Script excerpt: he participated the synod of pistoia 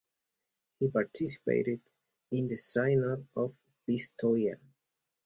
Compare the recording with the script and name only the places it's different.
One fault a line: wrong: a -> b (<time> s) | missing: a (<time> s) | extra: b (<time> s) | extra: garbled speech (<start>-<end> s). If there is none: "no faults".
extra: in (2.3 s)